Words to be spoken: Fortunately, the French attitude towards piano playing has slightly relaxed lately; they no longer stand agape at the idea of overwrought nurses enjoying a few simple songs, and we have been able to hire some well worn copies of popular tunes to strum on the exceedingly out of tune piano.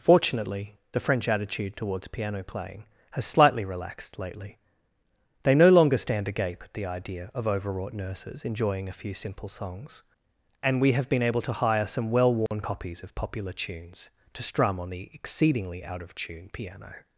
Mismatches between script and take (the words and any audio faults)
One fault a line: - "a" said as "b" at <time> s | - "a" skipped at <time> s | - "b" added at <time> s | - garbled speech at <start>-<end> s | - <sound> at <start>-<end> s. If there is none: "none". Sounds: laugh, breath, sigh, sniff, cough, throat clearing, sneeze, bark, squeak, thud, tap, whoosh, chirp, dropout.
- dropout at 12.5-12.5 s